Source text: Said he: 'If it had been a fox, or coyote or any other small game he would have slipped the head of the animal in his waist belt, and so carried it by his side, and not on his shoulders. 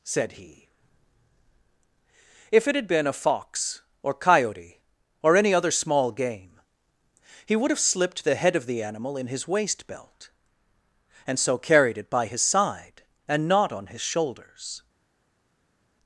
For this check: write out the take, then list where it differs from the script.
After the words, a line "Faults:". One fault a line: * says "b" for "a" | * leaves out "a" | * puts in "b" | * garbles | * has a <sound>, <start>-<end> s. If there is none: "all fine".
Said he: 'If it had been a fox, or coyote or any other small game he would have slipped the head of the animal in his waist belt, and so carried it by his side, and not on his shoulders.
Faults:
all fine